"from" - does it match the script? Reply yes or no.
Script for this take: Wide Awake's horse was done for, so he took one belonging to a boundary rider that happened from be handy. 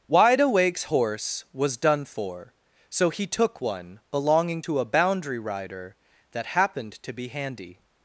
no